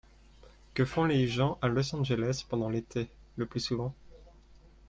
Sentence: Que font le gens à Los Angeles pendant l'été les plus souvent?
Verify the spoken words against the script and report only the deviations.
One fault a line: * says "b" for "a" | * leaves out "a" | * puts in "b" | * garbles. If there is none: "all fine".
* says "les" for "le"
* says "le" for "les"